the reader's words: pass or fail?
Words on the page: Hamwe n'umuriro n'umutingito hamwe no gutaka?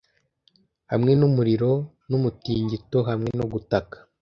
pass